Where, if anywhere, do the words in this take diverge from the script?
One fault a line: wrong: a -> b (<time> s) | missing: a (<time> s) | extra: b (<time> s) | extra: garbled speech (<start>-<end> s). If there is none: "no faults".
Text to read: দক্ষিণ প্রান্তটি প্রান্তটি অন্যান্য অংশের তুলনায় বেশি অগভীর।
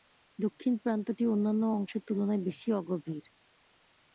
missing: প্রান্তটি (1.2 s)